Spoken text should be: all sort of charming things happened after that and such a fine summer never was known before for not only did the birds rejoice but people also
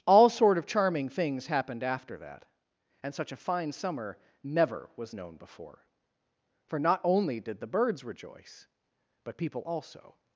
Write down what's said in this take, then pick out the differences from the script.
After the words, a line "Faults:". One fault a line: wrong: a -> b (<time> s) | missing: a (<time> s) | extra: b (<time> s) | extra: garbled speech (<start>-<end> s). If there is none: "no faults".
all sort of charming things happened after that and such a fine summer never was known before for not only did the birds rejoice but people also
Faults:
no faults